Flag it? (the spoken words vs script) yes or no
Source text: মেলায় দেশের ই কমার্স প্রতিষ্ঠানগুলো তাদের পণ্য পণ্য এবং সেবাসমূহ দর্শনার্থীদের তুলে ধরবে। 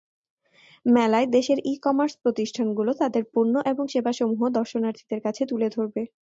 yes